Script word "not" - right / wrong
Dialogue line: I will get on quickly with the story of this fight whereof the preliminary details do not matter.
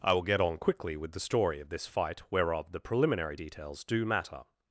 wrong